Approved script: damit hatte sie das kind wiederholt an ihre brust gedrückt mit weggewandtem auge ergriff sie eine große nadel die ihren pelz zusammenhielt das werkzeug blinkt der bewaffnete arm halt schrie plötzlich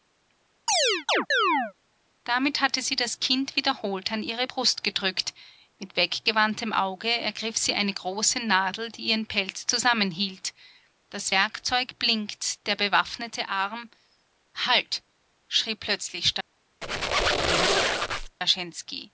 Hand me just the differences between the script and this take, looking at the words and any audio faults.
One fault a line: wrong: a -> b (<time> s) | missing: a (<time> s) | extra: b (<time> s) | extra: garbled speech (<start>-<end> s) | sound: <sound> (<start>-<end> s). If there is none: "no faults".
sound: chirp (0.7-1.7 s)
sound: squeak (16.8-18.4 s)